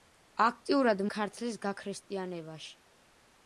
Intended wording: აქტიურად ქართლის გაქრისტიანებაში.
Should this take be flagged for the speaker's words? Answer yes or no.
no